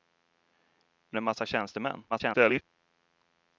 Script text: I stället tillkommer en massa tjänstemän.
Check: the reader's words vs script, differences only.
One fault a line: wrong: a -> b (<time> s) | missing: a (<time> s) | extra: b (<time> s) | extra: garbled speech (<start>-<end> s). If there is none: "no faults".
missing: stället tillkommer (1.2 s)
extra: garbled speech (2.1-2.6 s)